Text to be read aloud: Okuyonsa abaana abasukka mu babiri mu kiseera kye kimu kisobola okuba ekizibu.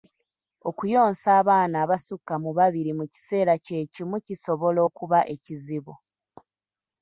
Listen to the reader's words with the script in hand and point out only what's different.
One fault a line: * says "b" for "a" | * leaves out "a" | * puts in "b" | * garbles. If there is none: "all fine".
all fine